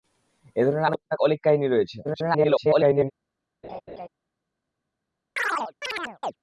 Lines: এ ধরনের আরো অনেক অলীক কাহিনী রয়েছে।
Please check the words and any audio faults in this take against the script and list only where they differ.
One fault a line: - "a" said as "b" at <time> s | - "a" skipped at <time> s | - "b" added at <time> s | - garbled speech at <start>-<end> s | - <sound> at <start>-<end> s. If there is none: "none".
- "আরো" skipped at 0.9 s
- garbled speech at 2.0-3.1 s
- laugh at 3.6-4.1 s
- chirp at 5.4-6.4 s